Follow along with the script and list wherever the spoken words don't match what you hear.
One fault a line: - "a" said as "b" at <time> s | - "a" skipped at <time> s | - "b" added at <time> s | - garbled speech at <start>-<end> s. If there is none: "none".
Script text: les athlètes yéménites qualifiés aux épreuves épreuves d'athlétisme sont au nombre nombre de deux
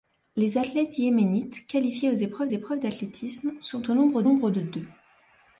none